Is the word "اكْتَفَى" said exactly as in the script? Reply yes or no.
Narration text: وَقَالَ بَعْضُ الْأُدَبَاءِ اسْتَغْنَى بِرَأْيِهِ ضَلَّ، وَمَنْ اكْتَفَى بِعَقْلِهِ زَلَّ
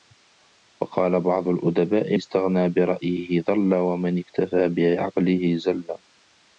yes